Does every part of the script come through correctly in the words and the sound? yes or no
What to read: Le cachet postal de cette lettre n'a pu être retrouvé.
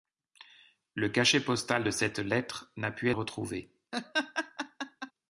no